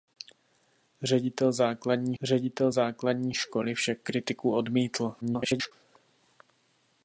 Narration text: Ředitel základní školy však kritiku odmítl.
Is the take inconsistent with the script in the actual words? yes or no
yes